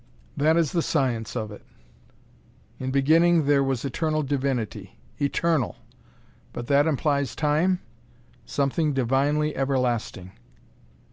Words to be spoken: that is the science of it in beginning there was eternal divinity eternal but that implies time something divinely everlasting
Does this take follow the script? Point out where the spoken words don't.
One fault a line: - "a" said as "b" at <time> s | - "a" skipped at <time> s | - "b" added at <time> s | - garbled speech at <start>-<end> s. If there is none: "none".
none